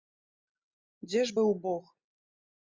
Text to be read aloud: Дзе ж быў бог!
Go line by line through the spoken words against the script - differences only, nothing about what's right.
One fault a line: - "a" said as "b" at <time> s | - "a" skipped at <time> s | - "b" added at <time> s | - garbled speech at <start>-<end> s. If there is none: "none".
none